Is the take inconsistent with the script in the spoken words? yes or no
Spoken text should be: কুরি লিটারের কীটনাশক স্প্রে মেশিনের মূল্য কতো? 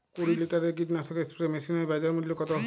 yes